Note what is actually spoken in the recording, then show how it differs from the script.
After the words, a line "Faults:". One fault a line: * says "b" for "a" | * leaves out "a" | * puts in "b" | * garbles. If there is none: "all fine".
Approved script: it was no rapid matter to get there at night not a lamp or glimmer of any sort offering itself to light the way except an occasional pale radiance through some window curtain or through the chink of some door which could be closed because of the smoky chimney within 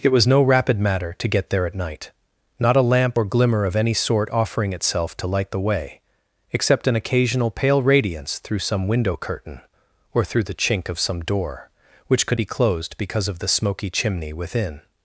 it was no rapid matter to get there at night not a lamp or glimmer of any sort offering itself to light the way except an occasional pale radiance through some window curtain or through the chink of some door which could be closed because of the smoky chimney within
Faults:
all fine